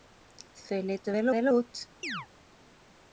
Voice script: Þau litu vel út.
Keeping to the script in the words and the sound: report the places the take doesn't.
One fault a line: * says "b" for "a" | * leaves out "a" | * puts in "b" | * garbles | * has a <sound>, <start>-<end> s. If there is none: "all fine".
* puts in "vel"
* has a chirp, 2.0-2.3 s